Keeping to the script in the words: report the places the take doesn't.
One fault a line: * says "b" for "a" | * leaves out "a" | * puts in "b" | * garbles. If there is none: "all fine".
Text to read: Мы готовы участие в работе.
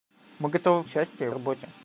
all fine